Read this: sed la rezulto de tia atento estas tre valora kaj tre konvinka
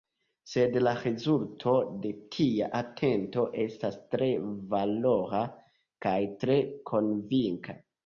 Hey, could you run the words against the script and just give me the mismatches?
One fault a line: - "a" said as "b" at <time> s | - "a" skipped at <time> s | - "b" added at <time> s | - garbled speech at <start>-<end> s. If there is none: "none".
none